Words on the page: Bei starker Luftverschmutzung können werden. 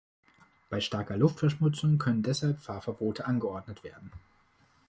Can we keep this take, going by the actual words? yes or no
no